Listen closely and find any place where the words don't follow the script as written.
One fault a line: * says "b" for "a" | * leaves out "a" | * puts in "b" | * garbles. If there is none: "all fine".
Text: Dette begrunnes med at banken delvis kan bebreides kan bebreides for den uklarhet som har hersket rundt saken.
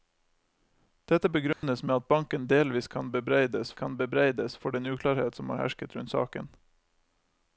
all fine